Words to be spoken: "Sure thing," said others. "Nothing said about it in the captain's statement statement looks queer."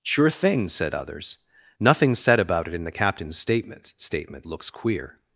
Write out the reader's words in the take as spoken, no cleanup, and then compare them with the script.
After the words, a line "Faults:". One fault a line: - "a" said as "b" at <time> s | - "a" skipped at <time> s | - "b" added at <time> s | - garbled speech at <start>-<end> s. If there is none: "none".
"Sure thing," said others. "Nothing said about it in the captain's statement statement looks queer."
Faults:
none